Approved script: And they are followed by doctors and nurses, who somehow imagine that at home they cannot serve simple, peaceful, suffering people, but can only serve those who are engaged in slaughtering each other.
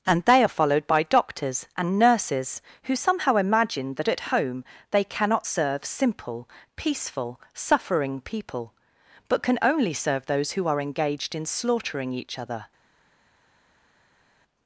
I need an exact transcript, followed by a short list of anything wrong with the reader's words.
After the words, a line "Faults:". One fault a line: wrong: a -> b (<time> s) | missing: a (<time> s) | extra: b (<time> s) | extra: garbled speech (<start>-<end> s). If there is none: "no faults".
And they are followed by doctors and nurses, who somehow imagine that at home they cannot serve simple, peaceful, suffering people, but can only serve those who are engaged in slaughtering each other.
Faults:
no faults